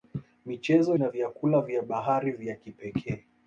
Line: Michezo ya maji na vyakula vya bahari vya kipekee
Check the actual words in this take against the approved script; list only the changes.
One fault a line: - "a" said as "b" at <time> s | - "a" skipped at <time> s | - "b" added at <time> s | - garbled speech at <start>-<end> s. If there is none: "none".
- "ya maji" skipped at 1.0 s